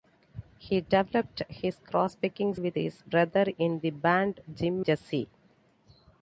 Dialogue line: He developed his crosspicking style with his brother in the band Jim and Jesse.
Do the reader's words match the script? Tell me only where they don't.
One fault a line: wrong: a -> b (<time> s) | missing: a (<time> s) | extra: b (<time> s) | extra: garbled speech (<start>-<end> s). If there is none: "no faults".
missing: style (2.5 s)
missing: and (4.9 s)